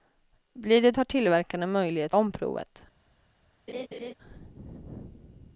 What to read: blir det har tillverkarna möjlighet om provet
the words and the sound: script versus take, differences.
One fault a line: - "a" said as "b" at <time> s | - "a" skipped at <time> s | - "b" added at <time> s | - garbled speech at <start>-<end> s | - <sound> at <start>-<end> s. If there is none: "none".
- laugh at 3.7-4.1 s